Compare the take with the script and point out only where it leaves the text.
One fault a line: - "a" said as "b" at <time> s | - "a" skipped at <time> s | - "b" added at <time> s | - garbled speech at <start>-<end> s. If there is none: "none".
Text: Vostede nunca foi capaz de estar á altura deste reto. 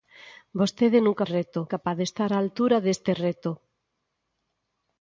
- "foi" said as "reto" at 1.3 s